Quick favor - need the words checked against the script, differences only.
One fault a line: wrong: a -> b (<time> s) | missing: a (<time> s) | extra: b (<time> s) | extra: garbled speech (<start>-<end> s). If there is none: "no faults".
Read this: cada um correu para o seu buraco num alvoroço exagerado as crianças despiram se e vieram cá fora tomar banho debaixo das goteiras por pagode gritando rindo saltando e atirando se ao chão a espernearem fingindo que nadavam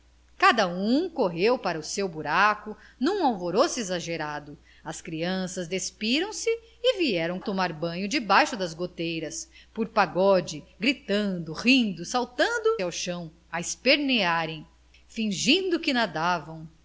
missing: cá fora (7.4 s)
missing: e atirando se (12.7 s)